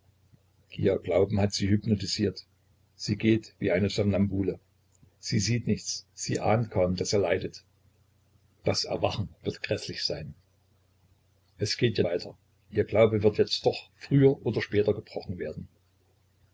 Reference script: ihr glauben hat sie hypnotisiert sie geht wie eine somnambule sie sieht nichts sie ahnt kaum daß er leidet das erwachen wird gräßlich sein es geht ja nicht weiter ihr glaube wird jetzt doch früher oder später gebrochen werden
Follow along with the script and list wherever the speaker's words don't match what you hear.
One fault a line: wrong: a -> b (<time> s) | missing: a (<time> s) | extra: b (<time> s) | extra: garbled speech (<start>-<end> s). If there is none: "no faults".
missing: nicht (12.0 s)